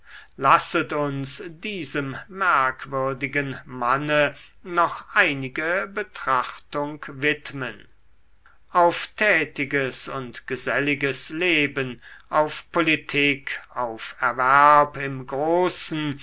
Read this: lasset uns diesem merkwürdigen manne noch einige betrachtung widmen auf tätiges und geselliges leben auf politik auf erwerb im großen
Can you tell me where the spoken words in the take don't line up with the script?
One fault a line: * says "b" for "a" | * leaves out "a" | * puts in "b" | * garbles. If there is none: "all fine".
all fine